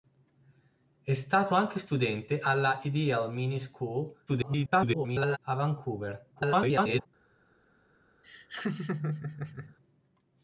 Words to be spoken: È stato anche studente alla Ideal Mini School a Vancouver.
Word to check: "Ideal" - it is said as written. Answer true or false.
true